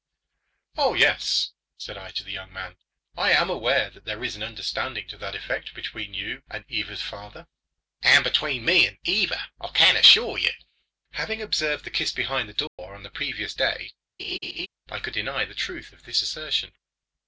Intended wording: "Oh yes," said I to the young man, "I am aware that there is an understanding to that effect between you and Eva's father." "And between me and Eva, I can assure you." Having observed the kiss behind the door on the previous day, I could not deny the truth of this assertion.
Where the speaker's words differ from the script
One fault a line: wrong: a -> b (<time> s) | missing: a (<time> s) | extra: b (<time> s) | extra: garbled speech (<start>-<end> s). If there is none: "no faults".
missing: not (15.2 s)